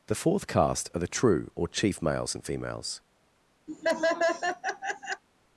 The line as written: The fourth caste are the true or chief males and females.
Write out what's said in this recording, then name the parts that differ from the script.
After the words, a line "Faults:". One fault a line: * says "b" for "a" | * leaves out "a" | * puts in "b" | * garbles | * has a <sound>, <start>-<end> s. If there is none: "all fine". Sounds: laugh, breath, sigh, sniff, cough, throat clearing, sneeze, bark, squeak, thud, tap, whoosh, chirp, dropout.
The fourth caste are the true or chief males and females.
Faults:
* has a laugh, 3.7-5.2 s